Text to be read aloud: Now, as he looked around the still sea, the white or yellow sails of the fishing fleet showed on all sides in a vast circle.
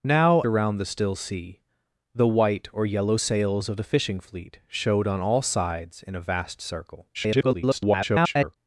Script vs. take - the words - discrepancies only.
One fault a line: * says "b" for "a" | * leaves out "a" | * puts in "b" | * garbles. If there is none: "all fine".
* leaves out "as he looked"
* garbles